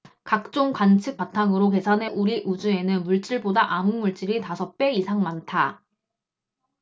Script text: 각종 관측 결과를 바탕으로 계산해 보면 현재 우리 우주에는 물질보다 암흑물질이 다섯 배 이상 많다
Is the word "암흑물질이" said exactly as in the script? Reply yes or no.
yes